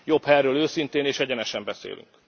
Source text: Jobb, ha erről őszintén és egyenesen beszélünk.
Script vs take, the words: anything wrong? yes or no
no